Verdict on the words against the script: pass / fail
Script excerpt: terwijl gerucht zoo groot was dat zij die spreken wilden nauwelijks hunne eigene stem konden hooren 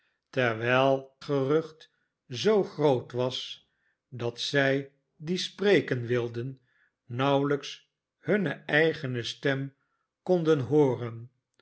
pass